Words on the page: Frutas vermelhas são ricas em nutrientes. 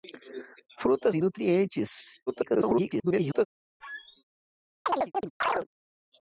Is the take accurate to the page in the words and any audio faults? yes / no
no